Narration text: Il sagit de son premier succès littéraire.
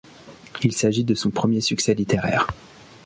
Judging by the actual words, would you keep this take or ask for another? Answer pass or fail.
pass